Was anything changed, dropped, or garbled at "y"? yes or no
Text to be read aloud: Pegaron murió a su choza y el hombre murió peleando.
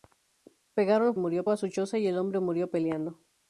no